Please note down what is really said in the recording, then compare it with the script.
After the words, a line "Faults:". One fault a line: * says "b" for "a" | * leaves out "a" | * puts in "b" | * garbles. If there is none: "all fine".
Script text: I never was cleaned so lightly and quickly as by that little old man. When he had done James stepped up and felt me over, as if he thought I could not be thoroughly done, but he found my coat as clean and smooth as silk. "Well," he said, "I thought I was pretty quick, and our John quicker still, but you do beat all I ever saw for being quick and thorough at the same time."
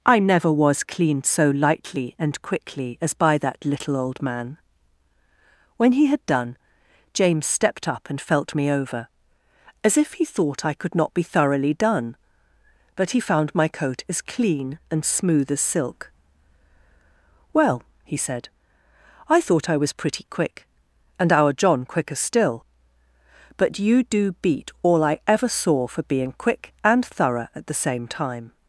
I never was cleaned so lightly and quickly as by that little old man. When he had done James stepped up and felt me over, as if he thought I could not be thoroughly done, but he found my coat as clean and smooth as silk. "Well," he said, "I thought I was pretty quick, and our John quicker still, but you do beat all I ever saw for being quick and thorough at the same time."
Faults:
all fine